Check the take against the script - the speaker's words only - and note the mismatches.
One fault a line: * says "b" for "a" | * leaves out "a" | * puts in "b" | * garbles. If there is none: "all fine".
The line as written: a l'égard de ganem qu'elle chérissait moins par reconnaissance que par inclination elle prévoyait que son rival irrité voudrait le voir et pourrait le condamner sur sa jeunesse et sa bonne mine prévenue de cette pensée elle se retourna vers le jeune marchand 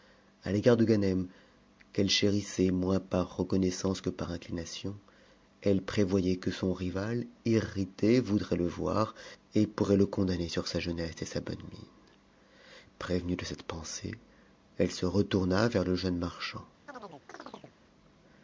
all fine